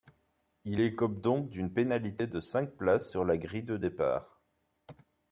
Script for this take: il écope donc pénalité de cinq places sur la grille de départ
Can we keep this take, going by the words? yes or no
no